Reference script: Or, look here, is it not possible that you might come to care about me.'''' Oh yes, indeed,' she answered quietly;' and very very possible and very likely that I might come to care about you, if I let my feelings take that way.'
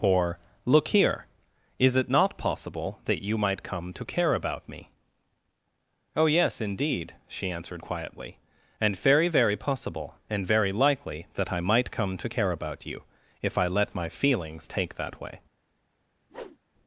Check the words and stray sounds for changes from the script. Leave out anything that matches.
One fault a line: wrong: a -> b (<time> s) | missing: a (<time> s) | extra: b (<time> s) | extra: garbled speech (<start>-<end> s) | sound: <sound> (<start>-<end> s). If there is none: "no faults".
sound: whoosh (16.3-16.6 s)